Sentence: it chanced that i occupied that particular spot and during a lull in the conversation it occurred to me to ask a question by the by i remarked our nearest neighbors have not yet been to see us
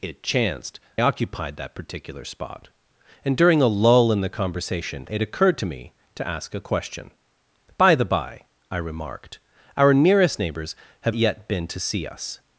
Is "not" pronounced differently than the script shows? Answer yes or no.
yes